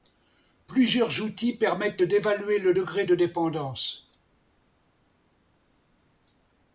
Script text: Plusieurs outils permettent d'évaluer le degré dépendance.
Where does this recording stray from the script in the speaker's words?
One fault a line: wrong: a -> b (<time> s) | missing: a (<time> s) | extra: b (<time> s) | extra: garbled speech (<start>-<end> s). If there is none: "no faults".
extra: de (3.0 s)